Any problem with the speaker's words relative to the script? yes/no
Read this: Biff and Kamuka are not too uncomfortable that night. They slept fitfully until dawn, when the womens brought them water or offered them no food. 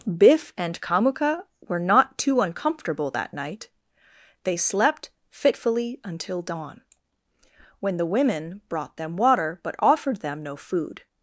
yes